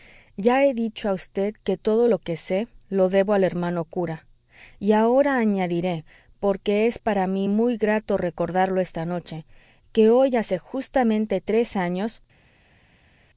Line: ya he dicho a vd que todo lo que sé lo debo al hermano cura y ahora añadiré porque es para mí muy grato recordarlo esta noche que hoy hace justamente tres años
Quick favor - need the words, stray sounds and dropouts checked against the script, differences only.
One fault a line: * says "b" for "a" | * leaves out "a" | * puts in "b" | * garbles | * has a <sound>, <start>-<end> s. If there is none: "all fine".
all fine